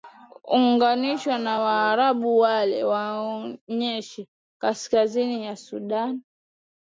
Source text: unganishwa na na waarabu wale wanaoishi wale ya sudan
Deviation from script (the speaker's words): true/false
true